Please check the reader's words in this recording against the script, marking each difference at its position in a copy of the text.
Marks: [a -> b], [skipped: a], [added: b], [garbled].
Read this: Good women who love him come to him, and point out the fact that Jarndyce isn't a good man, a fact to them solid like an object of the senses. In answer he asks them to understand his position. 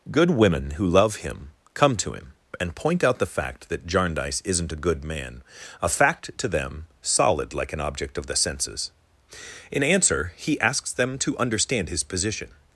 Good women who love him come to him, and point out the fact that Jarndyce isn't a good man, a fact to them solid like an object of the senses. In answer he asks them to understand his position.